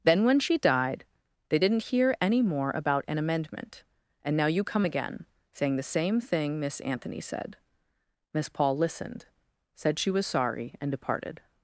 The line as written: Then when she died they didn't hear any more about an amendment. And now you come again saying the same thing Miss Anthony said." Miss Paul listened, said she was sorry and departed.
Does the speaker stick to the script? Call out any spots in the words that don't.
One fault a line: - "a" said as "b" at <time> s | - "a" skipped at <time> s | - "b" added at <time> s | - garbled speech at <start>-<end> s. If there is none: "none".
none